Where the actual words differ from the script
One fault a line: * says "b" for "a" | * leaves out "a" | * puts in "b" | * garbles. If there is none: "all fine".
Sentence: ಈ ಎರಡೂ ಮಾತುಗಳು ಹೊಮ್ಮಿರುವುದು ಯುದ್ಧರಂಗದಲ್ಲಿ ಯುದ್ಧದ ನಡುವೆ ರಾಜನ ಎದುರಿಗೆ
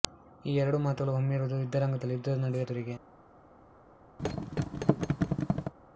* leaves out "ರಾಜನ"